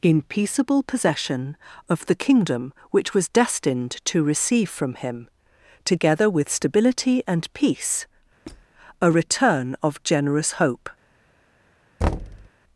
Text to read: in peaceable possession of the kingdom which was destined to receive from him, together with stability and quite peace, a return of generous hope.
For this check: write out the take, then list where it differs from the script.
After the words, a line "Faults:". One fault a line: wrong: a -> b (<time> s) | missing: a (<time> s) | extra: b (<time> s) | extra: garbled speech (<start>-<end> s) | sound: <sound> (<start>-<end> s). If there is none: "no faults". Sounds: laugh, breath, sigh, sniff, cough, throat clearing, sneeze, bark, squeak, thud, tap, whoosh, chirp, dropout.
in peaceable possession of the kingdom which was destined to receive from him, together with stability and peace, a return of generous hope.
Faults:
missing: quite (7.5 s)
sound: squeak (8.4-8.7 s)
sound: thud (12.0-12.5 s)